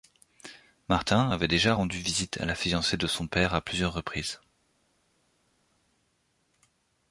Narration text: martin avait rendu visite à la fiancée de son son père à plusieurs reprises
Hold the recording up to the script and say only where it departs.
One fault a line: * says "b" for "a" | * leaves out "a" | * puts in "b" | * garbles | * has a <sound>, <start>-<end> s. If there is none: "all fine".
* puts in "déjà"
* leaves out "son"